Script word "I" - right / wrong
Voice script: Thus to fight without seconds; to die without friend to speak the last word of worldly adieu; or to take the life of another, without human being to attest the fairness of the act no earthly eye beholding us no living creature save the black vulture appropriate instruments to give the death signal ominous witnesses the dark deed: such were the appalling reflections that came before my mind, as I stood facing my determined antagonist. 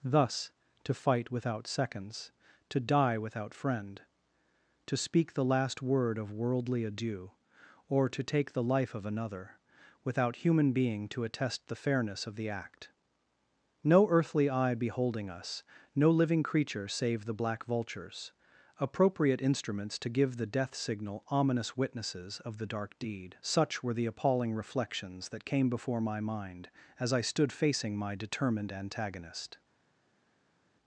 right